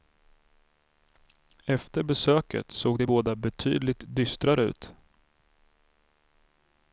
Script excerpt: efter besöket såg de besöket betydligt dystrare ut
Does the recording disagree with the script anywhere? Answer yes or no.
yes